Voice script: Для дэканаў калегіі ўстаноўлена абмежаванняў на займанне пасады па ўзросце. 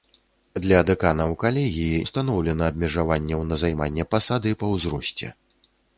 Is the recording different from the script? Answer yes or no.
no